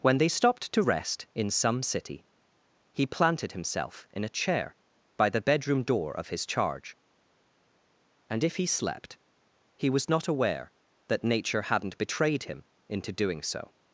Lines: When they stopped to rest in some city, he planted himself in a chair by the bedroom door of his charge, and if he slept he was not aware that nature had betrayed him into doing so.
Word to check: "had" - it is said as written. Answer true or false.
false